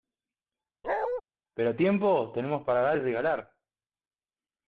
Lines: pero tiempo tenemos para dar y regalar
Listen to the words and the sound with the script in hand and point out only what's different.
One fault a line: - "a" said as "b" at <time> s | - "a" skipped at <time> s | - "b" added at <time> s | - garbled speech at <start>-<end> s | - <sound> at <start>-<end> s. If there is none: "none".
- bark at 0.8-1.2 s